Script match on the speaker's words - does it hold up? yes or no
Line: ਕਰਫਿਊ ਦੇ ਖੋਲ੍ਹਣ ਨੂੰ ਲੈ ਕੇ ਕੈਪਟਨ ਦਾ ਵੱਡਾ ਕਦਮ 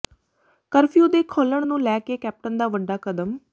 yes